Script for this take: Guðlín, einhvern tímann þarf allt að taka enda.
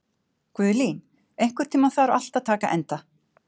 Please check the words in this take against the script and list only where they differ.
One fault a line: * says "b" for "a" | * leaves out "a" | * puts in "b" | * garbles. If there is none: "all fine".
all fine